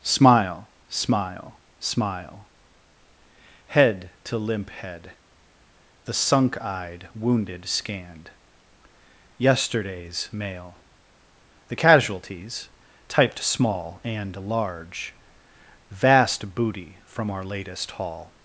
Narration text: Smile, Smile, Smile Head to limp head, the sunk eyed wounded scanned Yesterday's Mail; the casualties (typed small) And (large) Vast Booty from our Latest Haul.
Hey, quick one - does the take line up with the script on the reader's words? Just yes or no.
yes